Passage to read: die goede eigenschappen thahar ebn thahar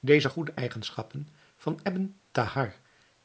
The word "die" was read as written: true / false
false